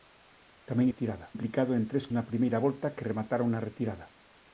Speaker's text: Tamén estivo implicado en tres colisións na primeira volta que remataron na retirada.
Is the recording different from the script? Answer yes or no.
yes